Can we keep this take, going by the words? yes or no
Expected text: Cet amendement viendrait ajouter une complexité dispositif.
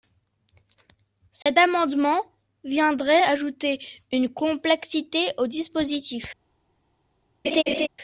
no